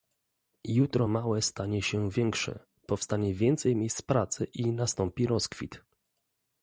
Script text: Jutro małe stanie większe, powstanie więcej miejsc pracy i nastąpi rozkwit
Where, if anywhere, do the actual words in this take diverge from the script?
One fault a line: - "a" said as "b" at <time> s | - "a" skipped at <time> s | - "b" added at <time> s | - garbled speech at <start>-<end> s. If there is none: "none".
- "się" added at 1.8 s